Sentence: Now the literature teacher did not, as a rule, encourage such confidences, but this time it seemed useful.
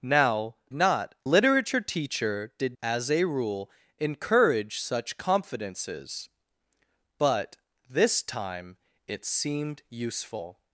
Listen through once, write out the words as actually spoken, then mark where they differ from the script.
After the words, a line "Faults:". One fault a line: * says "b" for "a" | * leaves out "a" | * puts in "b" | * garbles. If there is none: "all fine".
Now not literature teacher did as a rule, encourage such confidences, but this time it seemed useful.
Faults:
* says "not" for "the"
* leaves out "not"